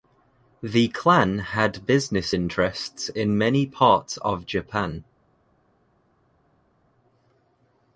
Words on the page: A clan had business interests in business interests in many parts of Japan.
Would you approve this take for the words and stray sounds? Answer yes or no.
no